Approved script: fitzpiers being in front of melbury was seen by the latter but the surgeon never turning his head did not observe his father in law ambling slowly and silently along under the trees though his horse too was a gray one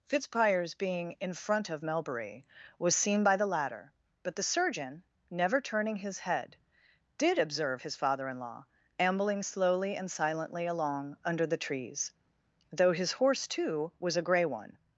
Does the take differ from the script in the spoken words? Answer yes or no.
yes